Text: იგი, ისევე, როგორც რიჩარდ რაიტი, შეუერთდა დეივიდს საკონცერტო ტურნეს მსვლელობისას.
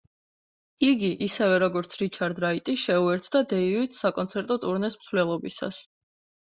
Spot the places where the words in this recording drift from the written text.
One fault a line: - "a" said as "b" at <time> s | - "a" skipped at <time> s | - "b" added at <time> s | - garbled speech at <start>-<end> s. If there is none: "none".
none